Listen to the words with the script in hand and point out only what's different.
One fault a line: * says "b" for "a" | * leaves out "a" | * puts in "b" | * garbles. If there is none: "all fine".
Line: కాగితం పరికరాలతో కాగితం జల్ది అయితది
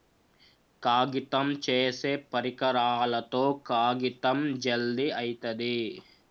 * puts in "చేసే"